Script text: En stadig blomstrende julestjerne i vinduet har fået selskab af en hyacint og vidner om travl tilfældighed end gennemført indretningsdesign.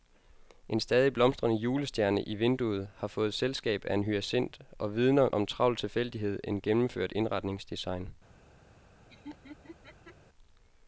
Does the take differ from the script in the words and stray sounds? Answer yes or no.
yes